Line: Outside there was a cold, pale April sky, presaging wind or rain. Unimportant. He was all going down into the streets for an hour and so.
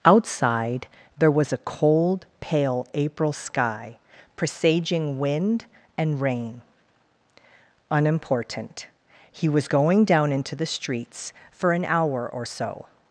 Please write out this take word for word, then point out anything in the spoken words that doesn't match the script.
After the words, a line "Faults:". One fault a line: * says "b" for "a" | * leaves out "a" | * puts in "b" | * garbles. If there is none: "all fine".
Outside there was a cold, pale April sky, presaging wind and rain. Unimportant. He was going down into the streets for an hour or so.
Faults:
* says "and" for "or"
* leaves out "all"
* says "or" for "and"